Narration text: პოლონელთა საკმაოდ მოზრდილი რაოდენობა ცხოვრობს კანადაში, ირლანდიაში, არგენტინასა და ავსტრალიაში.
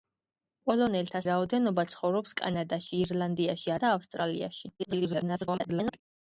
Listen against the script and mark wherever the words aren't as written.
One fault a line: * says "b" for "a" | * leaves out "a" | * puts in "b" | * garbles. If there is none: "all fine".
* leaves out "საკმაოდ მოზრდილი"
* leaves out "არგენტინასა"
* garbles